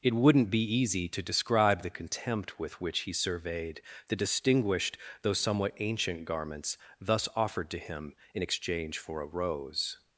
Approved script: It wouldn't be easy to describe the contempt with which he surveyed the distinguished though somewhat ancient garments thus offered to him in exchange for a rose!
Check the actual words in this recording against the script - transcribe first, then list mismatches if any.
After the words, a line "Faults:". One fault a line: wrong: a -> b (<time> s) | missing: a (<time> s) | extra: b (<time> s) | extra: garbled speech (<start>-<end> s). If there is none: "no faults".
It wouldn't be easy to describe the contempt with which he surveyed the distinguished though somewhat ancient garments thus offered to him in exchange for a rose!
Faults:
no faults